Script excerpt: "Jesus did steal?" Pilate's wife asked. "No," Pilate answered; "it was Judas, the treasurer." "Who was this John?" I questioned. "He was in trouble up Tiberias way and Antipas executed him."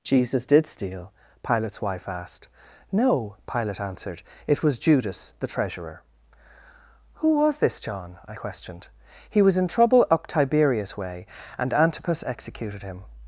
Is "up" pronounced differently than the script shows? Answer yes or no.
no